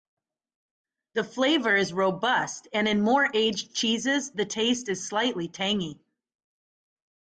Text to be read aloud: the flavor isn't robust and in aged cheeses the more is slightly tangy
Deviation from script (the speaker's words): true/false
true